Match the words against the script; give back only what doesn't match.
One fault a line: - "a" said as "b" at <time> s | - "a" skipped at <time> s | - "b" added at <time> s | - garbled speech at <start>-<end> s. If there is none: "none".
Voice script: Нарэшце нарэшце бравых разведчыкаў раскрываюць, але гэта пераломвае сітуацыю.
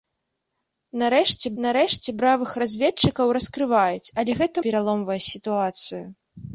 none